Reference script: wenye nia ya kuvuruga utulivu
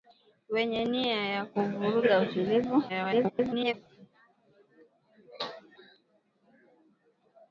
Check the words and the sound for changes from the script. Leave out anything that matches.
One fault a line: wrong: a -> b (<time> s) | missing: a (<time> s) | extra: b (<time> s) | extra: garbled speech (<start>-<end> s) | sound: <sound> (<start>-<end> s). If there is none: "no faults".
extra: garbled speech (2.9-3.7 s)